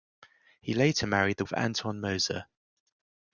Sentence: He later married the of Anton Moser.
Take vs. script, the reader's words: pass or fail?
pass